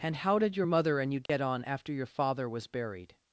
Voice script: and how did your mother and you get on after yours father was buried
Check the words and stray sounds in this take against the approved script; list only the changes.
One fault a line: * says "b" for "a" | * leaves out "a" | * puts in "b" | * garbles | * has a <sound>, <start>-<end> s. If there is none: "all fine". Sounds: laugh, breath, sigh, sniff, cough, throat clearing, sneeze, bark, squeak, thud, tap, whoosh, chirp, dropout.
* has a dropout, 1.3-1.3 s
* says "your" for "yours"